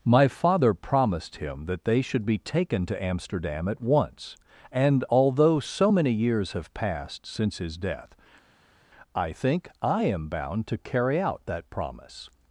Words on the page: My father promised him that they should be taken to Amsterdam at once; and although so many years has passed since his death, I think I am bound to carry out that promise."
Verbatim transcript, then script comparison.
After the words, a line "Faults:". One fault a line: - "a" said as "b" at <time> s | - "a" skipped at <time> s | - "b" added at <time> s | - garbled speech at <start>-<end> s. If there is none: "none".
My father promised him that they should be taken to Amsterdam at once; and although so many years have passed since his death, I think I am bound to carry out that promise."
Faults:
- "has" said as "have" at 6.5 s